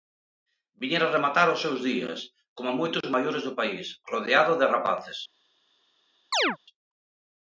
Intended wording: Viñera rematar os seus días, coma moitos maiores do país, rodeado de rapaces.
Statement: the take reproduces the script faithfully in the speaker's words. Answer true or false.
true